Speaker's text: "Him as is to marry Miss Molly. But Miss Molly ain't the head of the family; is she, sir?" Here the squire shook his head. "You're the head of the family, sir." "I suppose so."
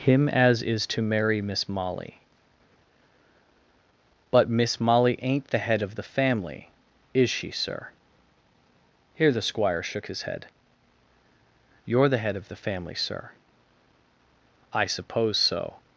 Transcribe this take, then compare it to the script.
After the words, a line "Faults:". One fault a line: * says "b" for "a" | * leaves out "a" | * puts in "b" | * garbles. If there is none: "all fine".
"Him as is to marry Miss Molly. But Miss Molly ain't the head of the family; is she, sir?" Here the squire shook his head. "You're the head of the family, sir." "I suppose so."
Faults:
all fine